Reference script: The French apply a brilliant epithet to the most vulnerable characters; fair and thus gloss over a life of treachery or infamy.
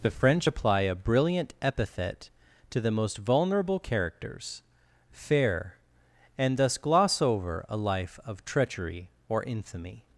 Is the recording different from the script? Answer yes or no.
no